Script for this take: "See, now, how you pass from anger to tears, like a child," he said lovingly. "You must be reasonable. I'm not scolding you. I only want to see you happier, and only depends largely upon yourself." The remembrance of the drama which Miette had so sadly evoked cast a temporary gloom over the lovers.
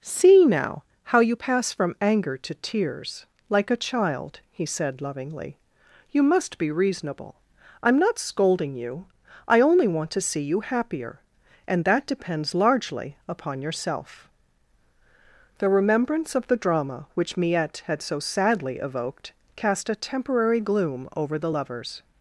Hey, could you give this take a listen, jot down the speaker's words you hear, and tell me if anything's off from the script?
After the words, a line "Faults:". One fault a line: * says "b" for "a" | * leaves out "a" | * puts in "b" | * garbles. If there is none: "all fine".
"See, now, how you pass from anger to tears, like a child," he said lovingly. "You must be reasonable. I'm not scolding you. I only want to see you happier, and that depends largely upon yourself." The remembrance of the drama which Miette had so sadly evoked cast a temporary gloom over the lovers.
Faults:
* says "that" for "only"